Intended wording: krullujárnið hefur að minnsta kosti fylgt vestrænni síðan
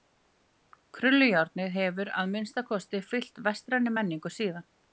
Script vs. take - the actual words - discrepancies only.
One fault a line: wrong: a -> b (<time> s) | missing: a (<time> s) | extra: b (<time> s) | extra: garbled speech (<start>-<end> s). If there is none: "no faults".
extra: menningu (4.0 s)